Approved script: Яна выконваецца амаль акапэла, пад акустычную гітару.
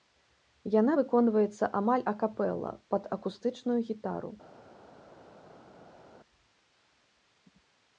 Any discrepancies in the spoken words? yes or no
no